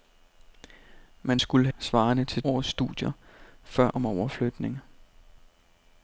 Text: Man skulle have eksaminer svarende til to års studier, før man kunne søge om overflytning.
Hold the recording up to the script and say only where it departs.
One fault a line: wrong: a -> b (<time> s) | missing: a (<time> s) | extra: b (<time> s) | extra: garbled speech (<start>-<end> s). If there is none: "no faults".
missing: have eksaminer (1.7 s)
missing: to (2.4 s)
missing: man kunne søge (3.9 s)